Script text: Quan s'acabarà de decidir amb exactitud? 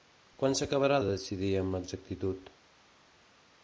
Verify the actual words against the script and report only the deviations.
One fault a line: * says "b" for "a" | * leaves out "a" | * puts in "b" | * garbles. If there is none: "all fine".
all fine